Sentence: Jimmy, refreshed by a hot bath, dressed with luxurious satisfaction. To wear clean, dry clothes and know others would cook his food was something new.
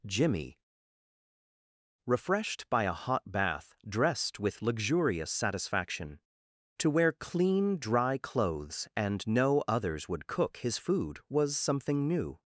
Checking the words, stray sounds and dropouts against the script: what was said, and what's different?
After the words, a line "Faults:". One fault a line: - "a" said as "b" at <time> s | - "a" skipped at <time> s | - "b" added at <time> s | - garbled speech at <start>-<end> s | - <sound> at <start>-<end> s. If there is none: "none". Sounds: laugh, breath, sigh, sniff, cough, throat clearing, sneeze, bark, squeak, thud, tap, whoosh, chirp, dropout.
Jimmy, refreshed by a hot bath, dressed with luxurious satisfaction. To wear clean, dry clothes and know others would cook his food was something new.
Faults:
none